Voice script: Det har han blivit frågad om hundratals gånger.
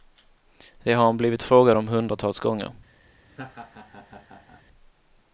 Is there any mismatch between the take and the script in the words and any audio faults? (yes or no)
yes